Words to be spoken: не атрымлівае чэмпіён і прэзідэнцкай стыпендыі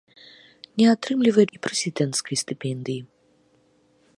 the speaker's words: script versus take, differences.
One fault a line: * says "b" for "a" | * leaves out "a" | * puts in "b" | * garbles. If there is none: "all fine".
* leaves out "чэмпіён"